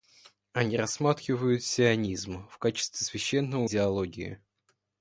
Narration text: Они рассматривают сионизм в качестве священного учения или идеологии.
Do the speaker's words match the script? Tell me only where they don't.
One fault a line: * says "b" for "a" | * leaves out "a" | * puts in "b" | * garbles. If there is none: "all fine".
* leaves out "учения или"